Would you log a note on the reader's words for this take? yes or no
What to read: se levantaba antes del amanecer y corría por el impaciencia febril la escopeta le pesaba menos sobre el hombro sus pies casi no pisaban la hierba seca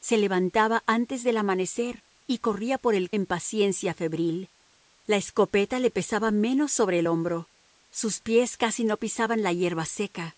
no